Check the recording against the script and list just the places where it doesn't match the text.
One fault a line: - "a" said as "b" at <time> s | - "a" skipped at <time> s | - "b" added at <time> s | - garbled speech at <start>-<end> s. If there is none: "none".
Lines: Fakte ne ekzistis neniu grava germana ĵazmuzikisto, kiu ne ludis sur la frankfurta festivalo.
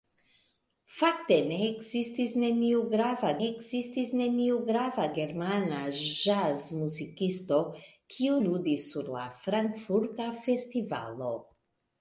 - "ekzistis neniu grava" added at 3.4 s
- "ne" skipped at 8.4 s